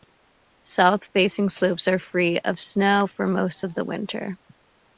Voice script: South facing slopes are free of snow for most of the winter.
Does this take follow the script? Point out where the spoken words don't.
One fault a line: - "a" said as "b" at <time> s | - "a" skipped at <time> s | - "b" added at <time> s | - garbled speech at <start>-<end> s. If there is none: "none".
none